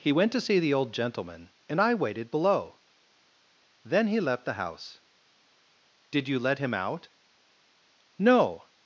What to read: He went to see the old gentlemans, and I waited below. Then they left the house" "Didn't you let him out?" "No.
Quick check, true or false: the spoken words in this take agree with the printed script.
false